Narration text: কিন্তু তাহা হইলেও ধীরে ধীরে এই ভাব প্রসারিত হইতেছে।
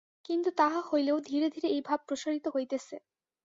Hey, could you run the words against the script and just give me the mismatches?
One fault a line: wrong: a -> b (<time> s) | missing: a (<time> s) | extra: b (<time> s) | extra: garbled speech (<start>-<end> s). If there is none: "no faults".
no faults